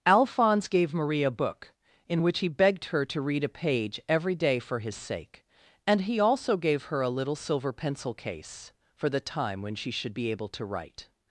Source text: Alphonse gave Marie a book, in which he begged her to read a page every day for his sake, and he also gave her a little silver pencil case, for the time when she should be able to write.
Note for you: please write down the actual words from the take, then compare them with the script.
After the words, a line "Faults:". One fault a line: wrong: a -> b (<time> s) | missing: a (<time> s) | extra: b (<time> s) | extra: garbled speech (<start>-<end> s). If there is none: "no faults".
Alphonse gave Marie a book, in which he begged her to read a page every day for his sake, and he also gave her a little silver pencil case, for the time when she should be able to write.
Faults:
no faults